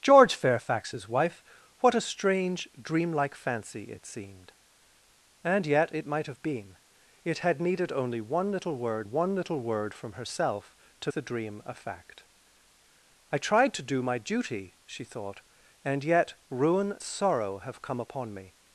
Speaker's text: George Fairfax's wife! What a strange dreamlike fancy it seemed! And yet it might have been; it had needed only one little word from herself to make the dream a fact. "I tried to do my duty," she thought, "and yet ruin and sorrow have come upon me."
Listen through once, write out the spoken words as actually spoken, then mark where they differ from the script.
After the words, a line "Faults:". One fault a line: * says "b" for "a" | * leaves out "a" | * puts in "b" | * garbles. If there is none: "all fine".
George Fairfax's wife! What a strange dreamlike fancy it seemed! And yet it might have been; it had needed only one little word one little word from herself to the dream a fact. "I tried to do my duty," she thought, "and yet ruin sorrow have come upon me."
Faults:
* puts in "one little word"
* leaves out "make"
* leaves out "and"